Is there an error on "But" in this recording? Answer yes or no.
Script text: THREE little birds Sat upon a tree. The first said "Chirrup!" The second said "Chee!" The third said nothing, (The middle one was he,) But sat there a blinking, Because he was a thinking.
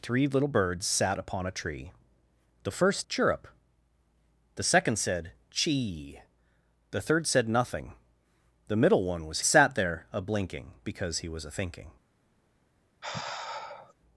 yes